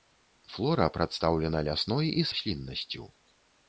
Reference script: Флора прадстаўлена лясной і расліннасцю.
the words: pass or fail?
pass